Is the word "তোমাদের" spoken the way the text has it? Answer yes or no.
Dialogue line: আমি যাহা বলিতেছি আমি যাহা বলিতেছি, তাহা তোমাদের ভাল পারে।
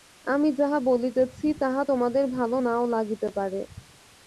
yes